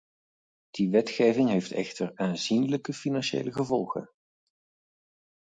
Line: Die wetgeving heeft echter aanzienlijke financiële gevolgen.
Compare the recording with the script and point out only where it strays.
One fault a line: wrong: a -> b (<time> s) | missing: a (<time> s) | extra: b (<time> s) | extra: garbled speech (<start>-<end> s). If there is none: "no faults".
no faults